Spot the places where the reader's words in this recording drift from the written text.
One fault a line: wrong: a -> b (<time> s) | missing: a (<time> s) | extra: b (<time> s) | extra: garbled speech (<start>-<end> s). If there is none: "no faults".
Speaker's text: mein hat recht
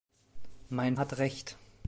no faults